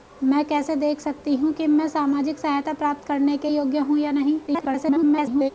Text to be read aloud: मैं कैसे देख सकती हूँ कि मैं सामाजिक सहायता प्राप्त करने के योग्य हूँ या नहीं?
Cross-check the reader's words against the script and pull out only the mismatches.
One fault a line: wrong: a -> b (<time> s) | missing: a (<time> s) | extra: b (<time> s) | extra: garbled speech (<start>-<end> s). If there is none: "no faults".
extra: garbled speech (4.5-5.5 s)